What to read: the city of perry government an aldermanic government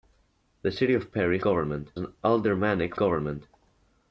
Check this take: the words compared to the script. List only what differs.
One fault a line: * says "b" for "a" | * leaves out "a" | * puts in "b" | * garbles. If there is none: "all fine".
all fine